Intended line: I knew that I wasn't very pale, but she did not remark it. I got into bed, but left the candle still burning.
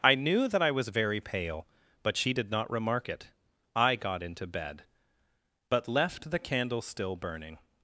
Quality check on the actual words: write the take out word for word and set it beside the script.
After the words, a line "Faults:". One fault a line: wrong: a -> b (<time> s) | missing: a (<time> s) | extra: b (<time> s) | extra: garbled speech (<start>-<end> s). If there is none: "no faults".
I knew that I was very pale, but she did not remark it. I got into bed, but left the candle still burning.
Faults:
wrong: wasn't -> was (0.7 s)